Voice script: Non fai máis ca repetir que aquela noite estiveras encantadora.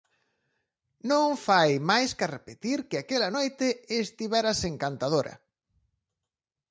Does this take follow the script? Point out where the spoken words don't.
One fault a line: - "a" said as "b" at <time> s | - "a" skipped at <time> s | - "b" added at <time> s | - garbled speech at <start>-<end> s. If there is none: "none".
none